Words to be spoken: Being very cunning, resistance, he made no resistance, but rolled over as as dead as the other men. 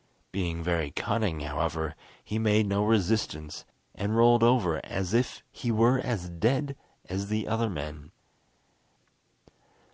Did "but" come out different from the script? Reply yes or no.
yes